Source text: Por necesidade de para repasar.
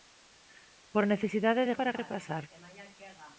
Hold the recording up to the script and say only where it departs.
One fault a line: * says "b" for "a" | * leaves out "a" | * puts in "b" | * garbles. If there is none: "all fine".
all fine